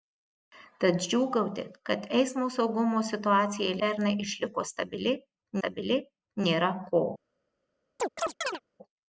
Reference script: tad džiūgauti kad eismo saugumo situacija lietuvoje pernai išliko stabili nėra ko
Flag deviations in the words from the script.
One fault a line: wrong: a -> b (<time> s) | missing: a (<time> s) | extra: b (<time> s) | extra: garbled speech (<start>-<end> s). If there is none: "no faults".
missing: lietuvoje (3.8 s)
extra: stabili (5.6 s)